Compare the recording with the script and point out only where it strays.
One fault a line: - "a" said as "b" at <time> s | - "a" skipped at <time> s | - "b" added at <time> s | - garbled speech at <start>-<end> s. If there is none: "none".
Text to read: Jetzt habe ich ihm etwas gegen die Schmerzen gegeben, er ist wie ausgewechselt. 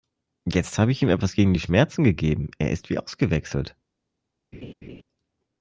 none